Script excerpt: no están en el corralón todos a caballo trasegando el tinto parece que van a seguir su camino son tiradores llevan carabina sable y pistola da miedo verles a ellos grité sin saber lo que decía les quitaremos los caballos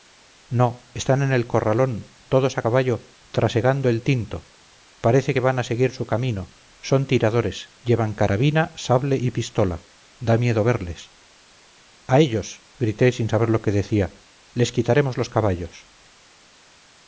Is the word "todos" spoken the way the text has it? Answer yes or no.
yes